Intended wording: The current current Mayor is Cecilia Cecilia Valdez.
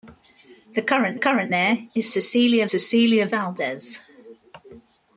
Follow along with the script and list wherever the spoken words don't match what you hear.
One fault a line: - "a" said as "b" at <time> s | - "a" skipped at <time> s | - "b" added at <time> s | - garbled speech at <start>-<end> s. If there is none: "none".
none